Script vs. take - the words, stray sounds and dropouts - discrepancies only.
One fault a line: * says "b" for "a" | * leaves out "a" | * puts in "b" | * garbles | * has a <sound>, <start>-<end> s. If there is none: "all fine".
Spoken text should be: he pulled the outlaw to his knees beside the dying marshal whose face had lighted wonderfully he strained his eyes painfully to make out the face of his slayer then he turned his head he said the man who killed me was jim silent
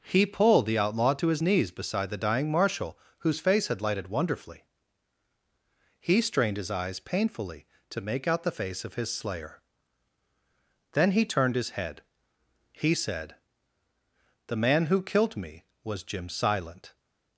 all fine